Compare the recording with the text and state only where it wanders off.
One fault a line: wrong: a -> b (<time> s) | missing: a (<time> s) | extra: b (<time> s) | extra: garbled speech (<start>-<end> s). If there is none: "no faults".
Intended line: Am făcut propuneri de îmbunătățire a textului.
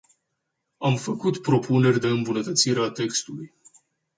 no faults